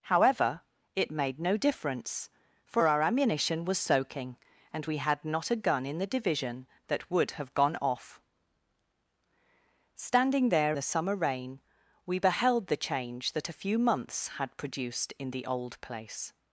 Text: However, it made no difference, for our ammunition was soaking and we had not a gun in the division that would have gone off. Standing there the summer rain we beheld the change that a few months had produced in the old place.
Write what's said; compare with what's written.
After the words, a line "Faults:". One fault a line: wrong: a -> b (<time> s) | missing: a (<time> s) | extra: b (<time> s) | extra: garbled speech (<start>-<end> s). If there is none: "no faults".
However, it made no difference, for our ammunition was soaking and we had not a gun in the division that would have gone off. Standing there the summer rain we beheld the change that a few months had produced in the old place.
Faults:
no faults